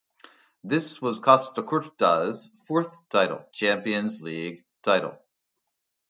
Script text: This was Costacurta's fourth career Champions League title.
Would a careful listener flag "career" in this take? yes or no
yes